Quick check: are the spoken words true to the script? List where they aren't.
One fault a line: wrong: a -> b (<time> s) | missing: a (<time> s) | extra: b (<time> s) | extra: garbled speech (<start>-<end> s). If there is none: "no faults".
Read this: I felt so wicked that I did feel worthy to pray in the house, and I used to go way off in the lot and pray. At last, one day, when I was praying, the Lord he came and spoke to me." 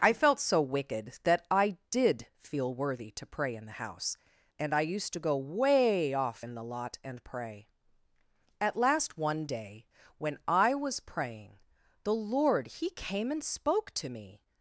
no faults